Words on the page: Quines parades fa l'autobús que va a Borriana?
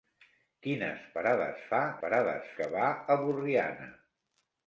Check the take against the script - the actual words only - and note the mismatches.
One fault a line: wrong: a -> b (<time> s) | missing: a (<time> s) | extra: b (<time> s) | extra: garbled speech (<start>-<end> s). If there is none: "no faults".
wrong: l'autobús -> parades (2.0 s)